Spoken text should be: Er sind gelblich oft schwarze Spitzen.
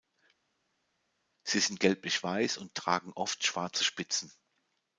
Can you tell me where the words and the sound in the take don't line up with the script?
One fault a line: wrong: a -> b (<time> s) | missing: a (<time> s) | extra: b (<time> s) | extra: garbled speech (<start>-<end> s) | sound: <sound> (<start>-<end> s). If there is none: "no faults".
wrong: Er -> Sie (1.4 s)
extra: weiß und tragen (2.2 s)